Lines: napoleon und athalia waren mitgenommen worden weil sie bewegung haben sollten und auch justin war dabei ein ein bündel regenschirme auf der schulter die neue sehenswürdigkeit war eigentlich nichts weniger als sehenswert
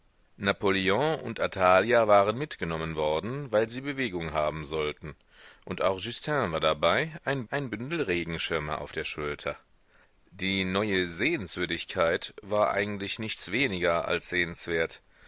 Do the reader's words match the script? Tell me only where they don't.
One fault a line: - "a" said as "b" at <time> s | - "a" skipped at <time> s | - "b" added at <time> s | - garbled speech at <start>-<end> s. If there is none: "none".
none